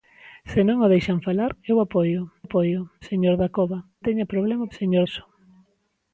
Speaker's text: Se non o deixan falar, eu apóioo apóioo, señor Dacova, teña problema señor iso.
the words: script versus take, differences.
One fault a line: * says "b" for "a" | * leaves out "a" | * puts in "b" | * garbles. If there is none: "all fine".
all fine